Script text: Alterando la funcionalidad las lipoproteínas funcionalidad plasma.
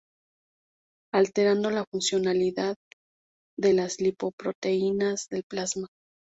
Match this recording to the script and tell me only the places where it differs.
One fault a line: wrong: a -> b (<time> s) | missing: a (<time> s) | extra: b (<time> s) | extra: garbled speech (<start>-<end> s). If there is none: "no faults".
extra: de (3.5 s)
wrong: funcionalidad -> del (5.3 s)